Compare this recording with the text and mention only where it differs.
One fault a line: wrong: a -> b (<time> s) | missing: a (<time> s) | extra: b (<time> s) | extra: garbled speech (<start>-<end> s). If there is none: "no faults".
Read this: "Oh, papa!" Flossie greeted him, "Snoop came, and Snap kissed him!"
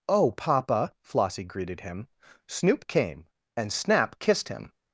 no faults